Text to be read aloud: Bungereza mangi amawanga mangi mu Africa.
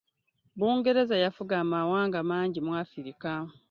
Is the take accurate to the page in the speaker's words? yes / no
no